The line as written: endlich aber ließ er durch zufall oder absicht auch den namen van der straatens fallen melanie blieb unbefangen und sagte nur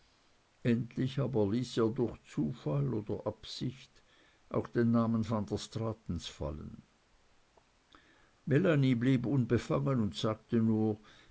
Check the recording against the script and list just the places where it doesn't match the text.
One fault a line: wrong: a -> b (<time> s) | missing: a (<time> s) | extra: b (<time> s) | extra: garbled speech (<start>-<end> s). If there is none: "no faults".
no faults